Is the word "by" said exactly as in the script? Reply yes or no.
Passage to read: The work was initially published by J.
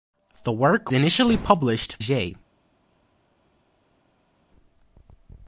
no